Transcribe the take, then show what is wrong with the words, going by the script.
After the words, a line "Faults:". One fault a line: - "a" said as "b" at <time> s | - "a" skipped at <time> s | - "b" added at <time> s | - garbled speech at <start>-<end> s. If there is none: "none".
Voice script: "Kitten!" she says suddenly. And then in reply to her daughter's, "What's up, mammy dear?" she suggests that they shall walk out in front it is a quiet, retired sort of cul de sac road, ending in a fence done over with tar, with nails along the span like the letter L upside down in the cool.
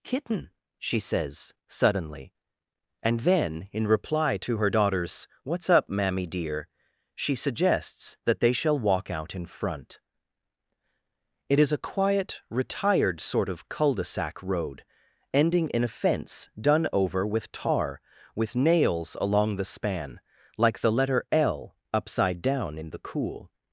"Kitten!" she says suddenly. And then in reply to her daughter's, "What's up, mammy dear?" she suggests that they shall walk out in front it is a quiet, retired sort of cul de sac road, ending in a fence done over with tar, with nails along the span like the letter L upside down in the cool.
Faults:
none